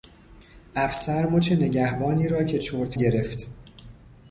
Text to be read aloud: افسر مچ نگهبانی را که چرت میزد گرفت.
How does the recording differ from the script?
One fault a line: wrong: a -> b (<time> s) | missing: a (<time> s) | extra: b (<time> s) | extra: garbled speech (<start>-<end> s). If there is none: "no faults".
missing: میزد (3.0 s)